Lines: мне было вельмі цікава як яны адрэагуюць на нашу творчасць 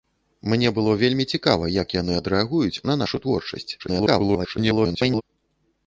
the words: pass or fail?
fail